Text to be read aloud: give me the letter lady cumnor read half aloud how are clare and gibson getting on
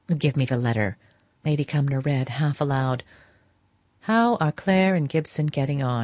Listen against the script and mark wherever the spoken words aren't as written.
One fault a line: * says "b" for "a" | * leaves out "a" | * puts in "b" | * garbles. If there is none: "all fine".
all fine